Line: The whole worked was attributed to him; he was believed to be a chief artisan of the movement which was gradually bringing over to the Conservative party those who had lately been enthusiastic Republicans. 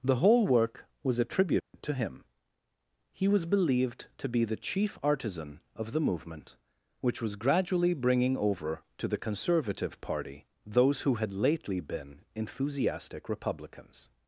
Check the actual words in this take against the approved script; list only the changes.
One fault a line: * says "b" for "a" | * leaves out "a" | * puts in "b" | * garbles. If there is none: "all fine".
* says "work" for "worked"
* says "the" for "a"